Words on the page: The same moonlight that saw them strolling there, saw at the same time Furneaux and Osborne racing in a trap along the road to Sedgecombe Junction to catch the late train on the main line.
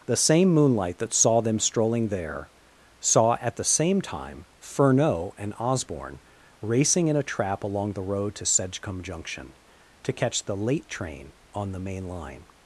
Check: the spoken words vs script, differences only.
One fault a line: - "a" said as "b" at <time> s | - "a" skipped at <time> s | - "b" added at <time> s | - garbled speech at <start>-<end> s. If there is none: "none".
none